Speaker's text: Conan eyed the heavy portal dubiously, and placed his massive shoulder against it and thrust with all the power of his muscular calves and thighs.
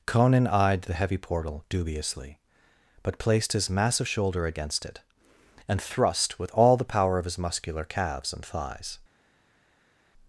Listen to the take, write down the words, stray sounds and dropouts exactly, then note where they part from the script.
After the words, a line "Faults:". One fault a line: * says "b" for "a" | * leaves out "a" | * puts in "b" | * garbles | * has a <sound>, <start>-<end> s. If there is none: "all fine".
Conan eyed the heavy portal dubiously, but placed his massive shoulder against it and thrust with all the power of his muscular calves and thighs.
Faults:
* says "but" for "and"